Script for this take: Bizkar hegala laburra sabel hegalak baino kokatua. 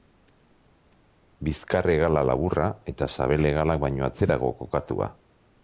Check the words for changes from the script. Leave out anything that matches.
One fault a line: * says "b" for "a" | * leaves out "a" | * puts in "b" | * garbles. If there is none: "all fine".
* puts in "eta"
* puts in "atzerago"